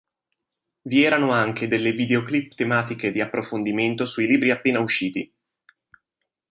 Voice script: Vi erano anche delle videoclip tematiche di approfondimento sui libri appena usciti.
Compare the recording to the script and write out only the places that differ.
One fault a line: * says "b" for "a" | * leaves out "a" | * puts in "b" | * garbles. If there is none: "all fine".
all fine